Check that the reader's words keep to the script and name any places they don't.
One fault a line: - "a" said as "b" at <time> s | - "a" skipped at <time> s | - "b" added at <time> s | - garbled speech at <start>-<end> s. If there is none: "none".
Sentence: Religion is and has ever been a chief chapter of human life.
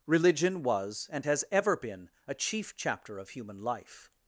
- "is" said as "was" at 0.6 s